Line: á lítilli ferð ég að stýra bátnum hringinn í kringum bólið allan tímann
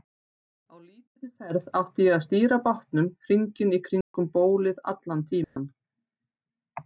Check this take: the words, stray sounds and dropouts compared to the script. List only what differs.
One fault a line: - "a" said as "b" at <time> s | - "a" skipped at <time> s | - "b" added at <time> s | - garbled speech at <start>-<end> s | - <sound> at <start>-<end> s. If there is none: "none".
- "átti" added at 1.8 s
- dropout at 4.0-4.1 s
- dropout at 5.4-5.6 s